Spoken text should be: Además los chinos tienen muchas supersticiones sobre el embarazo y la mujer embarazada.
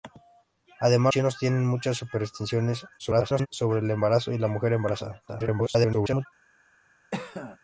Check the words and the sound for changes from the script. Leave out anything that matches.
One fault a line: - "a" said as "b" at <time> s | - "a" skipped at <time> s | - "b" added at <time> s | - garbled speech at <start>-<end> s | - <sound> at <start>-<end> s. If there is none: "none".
- "los" skipped at 1.1 s
- garbled speech at 3.0-3.5 s
- garbled speech at 5.3-6.3 s
- cough at 7.1-7.6 s